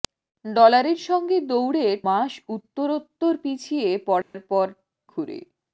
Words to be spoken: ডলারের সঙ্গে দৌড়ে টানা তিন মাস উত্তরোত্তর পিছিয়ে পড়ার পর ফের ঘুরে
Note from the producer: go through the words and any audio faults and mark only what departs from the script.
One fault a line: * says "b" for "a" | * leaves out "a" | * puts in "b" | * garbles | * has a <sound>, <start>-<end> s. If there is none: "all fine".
* leaves out "টানা তিন"
* has a dropout, 4.2-4.3 s
* leaves out "ফের"